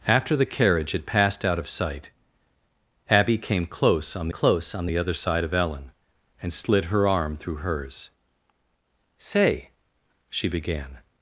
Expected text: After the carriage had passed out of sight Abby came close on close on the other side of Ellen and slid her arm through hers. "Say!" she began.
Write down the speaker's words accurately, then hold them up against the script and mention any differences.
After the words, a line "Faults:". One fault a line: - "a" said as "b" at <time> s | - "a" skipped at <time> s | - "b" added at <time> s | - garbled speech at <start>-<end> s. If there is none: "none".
After the carriage had passed out of sight Abby came close on close on the other side of Ellen and slid her arm through hers. "Say!" she began.
Faults:
none